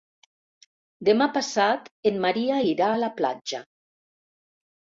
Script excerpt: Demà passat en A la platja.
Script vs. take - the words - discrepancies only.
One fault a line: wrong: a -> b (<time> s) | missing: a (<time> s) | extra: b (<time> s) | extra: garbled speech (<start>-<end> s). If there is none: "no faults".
extra: Maria irà (2.2 s)